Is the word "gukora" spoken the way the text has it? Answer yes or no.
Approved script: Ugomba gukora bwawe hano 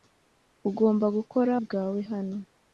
yes